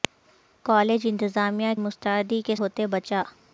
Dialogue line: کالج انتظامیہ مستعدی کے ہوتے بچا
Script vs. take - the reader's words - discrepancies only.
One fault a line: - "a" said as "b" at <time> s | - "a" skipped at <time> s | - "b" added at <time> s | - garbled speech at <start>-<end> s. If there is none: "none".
none